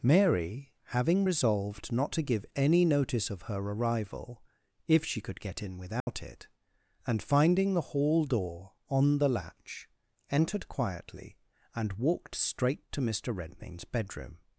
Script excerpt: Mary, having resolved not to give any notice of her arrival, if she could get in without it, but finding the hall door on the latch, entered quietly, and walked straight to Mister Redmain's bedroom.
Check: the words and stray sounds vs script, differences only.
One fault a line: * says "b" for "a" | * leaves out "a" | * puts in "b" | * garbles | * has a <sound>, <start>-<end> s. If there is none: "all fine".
* has a dropout, 6.0-6.1 s
* says "and" for "but"